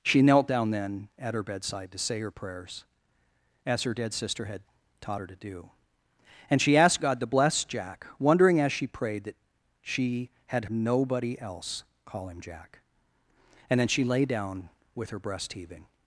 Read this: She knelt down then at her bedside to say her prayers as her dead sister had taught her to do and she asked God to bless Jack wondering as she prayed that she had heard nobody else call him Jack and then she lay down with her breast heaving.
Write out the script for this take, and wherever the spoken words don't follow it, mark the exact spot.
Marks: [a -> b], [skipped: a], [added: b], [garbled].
She knelt down then at her bedside to say her prayers as her dead sister had taught her to do and she asked God to bless Jack wondering as she prayed that she had [skipped: heard] nobody else call him Jack and then she lay down with her breast heaving.